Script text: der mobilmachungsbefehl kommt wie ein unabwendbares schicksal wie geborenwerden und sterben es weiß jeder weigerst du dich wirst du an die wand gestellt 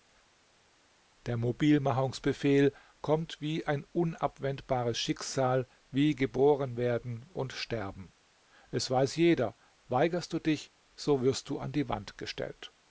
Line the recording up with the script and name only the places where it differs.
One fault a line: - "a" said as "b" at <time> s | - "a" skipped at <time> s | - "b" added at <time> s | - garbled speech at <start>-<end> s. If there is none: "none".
- "so" added at 11.0 s